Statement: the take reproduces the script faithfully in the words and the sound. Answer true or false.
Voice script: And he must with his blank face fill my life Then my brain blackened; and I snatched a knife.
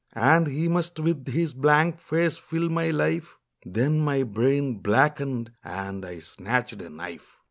true